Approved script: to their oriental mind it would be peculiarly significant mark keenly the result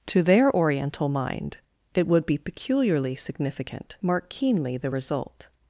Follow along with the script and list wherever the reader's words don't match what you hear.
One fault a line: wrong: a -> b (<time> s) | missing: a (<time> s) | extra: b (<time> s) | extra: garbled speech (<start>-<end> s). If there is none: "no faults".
no faults